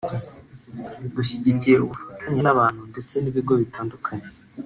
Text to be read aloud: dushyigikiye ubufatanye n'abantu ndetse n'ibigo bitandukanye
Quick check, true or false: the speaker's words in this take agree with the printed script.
true